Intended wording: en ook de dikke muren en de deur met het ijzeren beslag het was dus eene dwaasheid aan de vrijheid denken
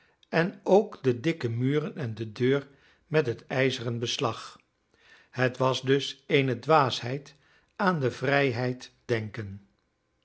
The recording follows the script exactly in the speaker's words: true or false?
true